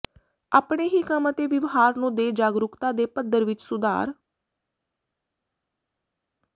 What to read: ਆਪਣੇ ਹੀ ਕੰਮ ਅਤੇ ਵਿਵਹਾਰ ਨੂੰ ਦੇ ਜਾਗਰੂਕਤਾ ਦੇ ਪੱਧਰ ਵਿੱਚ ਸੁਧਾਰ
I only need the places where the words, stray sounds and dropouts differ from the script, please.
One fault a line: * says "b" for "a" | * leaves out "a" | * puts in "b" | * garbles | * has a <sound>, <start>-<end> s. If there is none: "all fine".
all fine